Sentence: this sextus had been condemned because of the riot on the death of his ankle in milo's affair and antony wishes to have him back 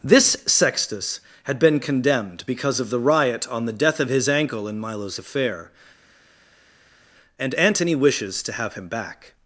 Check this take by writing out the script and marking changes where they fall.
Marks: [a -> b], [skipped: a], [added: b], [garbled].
this sextus had been condemned because of the riot on the death of his ankle in milo's affair and antony wishes to have him back